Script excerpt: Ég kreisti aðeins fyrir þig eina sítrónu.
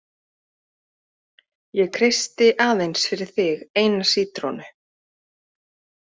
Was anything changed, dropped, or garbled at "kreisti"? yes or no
no